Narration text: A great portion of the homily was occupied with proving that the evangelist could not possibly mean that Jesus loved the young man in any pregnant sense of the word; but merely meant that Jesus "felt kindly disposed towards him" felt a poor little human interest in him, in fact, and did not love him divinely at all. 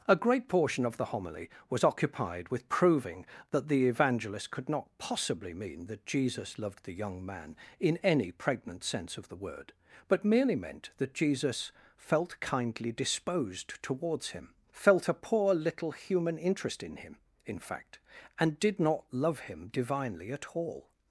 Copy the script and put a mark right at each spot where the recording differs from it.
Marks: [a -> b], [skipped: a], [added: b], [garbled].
A great portion of the homily was occupied with proving that the evangelist could not possibly mean that Jesus loved the young man in any pregnant sense of the word; but merely meant that Jesus "felt kindly disposed towards him" felt a poor little human interest in him, in fact, and did not love him divinely at all.